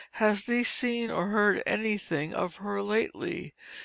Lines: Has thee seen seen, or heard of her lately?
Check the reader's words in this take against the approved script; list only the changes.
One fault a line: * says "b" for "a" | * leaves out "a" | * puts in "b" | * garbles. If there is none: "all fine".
* leaves out "seen"
* puts in "anything"